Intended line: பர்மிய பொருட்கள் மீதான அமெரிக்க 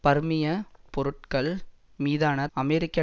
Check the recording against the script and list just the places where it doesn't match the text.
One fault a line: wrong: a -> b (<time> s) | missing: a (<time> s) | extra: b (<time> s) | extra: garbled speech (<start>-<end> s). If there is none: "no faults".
no faults